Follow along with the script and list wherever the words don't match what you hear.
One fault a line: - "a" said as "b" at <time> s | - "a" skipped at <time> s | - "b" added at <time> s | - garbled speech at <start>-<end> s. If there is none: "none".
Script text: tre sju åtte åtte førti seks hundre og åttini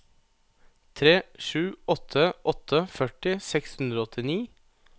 none